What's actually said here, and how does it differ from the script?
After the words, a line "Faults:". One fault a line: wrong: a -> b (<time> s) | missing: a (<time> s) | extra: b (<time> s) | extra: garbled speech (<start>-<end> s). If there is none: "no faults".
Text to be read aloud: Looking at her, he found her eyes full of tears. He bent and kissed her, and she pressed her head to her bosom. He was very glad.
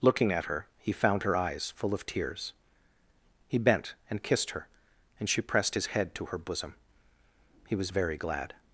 Looking at her, he found her eyes full of tears. He bent and kissed her, and she pressed his head to her bosom. He was very glad.
Faults:
wrong: her -> his (5.7 s)